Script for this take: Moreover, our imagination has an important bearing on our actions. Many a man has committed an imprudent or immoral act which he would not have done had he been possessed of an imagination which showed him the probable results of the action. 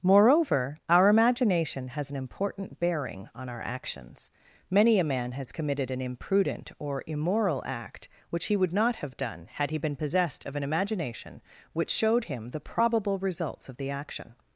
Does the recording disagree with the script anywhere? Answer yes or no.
no